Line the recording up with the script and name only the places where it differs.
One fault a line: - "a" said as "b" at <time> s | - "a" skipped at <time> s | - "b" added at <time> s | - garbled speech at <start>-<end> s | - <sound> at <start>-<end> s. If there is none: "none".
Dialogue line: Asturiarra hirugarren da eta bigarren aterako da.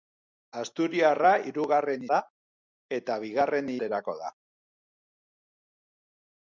none